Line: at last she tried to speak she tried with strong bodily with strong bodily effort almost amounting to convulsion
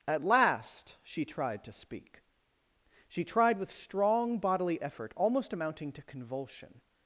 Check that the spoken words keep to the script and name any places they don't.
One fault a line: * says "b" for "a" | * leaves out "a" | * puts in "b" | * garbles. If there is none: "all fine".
* leaves out "with strong bodily"